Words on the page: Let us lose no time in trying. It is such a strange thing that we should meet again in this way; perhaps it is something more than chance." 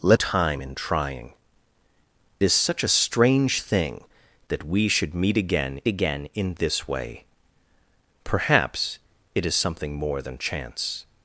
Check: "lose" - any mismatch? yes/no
yes